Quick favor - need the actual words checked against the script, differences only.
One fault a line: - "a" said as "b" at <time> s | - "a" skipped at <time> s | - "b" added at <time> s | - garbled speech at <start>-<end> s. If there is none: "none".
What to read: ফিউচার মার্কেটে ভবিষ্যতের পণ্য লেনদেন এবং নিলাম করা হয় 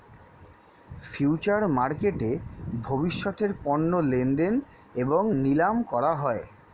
none